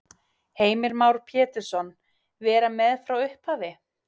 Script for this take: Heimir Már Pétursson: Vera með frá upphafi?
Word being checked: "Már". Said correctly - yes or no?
yes